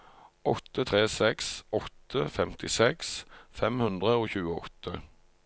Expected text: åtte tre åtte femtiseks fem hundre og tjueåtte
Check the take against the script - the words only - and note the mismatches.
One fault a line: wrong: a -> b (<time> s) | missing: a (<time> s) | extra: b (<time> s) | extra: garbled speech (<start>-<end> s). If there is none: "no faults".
extra: seks (1.1 s)